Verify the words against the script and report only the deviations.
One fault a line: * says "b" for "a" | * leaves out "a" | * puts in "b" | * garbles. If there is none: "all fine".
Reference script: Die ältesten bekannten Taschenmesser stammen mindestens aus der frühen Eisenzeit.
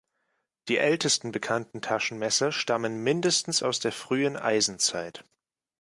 all fine